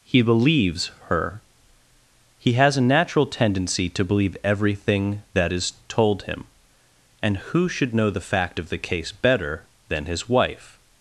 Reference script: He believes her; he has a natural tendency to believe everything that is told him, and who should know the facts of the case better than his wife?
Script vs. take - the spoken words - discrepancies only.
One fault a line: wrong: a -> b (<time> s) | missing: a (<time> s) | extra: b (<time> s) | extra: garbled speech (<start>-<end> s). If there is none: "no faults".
wrong: facts -> fact (8.2 s)